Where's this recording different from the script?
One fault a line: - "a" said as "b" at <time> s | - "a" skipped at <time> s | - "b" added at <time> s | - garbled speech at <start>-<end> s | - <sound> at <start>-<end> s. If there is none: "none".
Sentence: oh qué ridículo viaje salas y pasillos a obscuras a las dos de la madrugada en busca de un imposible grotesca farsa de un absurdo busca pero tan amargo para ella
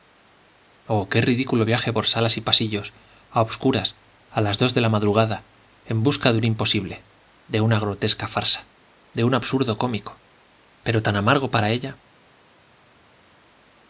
- "por" added at 1.9 s
- "de una" added at 7.5 s
- "busca" said as "cómico" at 9.8 s